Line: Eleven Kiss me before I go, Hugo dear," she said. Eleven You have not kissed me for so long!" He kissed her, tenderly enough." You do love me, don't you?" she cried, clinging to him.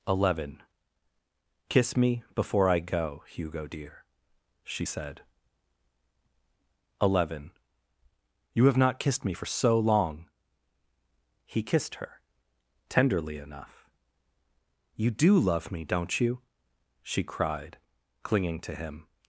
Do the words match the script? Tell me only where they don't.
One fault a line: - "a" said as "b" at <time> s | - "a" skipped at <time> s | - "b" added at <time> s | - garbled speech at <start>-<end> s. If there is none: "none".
none